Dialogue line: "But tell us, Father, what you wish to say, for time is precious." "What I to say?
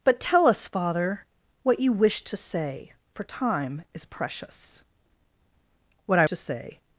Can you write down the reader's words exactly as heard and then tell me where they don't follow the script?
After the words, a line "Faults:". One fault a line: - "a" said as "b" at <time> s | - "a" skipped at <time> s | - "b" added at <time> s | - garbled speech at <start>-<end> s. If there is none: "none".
"But tell us, Father, what you wish to say, for time is precious." "What I to say?
Faults:
none